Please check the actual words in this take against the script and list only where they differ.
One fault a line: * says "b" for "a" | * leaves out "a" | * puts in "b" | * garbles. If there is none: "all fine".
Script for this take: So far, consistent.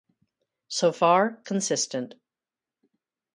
all fine